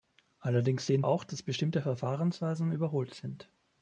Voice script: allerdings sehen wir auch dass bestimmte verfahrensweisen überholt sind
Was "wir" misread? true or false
true